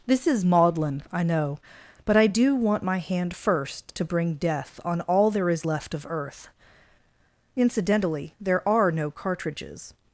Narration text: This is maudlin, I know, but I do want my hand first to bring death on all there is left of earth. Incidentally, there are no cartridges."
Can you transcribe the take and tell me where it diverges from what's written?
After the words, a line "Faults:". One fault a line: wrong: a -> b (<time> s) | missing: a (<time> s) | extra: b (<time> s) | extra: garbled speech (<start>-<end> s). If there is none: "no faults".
This is maudlin, I know, but I do want my hand first to bring death on all there is left of earth. Incidentally, there are no cartridges."
Faults:
no faults